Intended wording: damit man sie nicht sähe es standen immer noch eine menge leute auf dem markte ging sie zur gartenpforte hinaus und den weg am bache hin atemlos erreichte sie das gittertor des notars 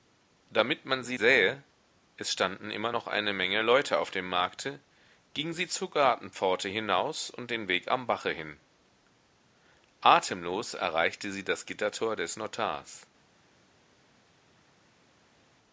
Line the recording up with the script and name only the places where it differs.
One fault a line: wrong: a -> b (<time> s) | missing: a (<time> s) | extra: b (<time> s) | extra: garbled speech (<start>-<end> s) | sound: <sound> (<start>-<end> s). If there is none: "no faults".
missing: nicht (1.2 s)